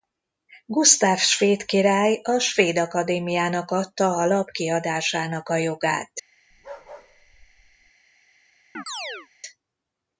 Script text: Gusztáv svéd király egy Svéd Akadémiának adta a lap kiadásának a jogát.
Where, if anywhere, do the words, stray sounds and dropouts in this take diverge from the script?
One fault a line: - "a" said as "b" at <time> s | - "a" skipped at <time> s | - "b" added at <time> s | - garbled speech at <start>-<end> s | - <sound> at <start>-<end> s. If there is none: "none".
- "egy" said as "a" at 2.2 s
- bark at 6.5-7.9 s
- chirp at 8.7-9.3 s